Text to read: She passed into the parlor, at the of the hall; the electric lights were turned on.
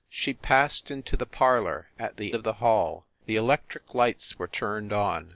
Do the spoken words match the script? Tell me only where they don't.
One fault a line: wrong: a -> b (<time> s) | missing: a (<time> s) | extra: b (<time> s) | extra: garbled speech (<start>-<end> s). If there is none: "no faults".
no faults